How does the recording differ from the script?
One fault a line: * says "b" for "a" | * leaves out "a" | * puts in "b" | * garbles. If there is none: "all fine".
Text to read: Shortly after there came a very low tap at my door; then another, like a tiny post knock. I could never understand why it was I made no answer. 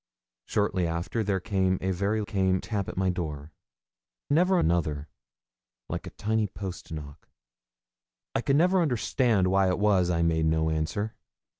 * says "came" for "low"
* says "never" for "then"